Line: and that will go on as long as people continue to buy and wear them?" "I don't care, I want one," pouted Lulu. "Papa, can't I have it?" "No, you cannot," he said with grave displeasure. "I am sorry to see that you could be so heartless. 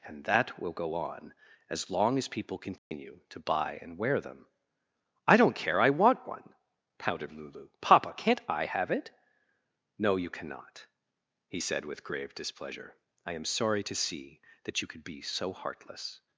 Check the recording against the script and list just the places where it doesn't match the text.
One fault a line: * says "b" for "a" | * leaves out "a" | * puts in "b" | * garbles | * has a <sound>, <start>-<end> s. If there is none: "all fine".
* has a dropout, 2.8-2.9 s